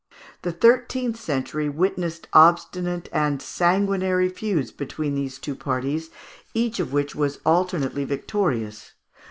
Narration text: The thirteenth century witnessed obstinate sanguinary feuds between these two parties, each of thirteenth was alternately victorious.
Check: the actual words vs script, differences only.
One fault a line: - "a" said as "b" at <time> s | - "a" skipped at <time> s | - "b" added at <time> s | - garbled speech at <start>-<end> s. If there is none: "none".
- "and" added at 3.1 s
- "thirteenth" said as "which" at 6.9 s